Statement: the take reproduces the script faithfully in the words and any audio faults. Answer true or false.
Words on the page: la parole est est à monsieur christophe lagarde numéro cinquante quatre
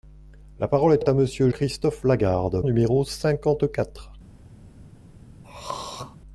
false